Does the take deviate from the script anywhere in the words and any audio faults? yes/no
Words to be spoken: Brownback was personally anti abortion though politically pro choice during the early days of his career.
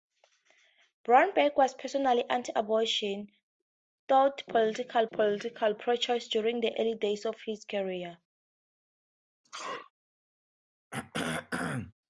yes